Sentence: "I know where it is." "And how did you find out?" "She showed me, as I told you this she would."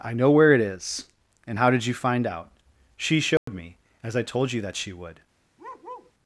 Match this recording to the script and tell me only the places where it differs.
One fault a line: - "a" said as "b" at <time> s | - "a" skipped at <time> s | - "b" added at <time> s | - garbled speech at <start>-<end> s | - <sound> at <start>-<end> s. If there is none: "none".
- dropout at 3.4-3.5 s
- "this" said as "that" at 4.6 s
- bark at 5.6-6.1 s